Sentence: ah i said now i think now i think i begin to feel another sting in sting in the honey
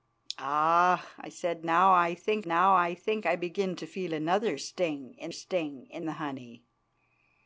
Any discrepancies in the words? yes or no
no